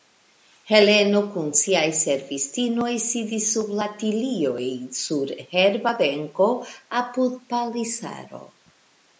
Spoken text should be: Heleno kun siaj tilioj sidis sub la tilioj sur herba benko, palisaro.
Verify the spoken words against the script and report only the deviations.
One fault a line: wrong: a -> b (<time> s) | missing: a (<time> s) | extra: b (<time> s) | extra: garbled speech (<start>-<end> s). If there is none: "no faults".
wrong: tilioj -> servistinoj (2.0 s)
extra: apud (7.0 s)